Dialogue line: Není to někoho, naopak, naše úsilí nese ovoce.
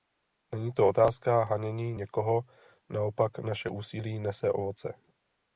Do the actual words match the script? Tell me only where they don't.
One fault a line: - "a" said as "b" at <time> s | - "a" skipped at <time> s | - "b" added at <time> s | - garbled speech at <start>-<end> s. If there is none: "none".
- "otázka hanění" added at 0.9 s